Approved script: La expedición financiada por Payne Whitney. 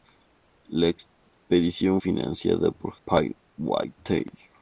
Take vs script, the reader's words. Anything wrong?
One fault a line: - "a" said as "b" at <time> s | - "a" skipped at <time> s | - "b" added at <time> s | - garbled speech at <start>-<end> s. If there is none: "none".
none